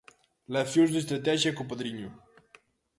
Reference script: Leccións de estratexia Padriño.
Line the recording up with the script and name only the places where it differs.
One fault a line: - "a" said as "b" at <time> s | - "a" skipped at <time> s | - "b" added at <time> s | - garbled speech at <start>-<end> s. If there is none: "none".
- "co" added at 1.6 s